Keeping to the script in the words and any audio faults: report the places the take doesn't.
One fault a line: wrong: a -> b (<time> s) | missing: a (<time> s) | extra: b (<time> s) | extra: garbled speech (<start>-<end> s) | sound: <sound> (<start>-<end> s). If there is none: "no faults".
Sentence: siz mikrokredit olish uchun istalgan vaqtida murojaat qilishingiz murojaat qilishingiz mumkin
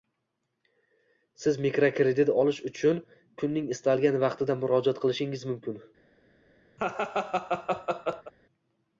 extra: kunning (3.4 s)
missing: murojaat qilishingiz (5.5 s)
sound: laugh (6.8-8.3 s)